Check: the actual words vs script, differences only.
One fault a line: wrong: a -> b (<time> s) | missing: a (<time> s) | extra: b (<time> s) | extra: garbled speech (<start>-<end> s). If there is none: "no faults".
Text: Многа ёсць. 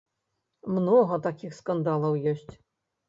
extra: такіх скандалаў (1.3 s)